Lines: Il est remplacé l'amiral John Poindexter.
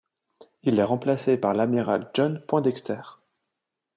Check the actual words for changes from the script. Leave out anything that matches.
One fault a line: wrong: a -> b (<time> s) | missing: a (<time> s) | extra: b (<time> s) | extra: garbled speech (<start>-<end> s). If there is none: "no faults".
extra: par (1.4 s)